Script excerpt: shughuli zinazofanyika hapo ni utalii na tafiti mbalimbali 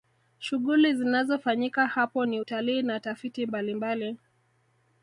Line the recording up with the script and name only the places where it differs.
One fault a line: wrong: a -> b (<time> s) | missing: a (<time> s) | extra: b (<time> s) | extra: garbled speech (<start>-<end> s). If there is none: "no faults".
no faults